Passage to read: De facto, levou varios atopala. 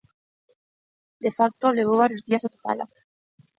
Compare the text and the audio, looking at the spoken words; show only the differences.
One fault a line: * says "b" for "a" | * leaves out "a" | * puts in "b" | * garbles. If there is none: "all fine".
* puts in "días"